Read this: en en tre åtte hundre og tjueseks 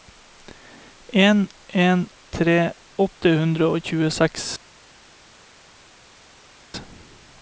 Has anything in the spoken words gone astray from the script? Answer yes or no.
no